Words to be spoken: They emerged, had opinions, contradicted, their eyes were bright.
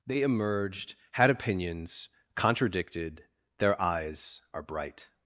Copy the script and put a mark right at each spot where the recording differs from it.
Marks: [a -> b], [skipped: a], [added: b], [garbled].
They emerged, had opinions, contradicted, their eyes [were -> are] bright.